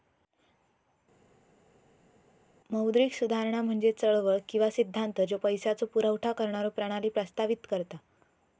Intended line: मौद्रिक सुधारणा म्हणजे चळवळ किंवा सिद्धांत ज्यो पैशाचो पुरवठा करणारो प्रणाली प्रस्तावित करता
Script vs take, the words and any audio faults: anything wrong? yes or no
no